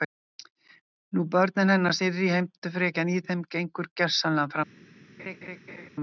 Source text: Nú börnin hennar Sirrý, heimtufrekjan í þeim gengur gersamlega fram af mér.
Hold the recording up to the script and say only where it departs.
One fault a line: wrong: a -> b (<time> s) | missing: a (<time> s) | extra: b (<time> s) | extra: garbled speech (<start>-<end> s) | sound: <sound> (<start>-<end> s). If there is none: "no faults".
sound: laugh (5.2-5.9 s)